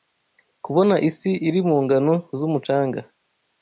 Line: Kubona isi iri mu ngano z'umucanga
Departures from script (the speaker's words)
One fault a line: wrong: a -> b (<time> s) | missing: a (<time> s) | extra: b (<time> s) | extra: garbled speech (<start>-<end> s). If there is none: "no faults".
no faults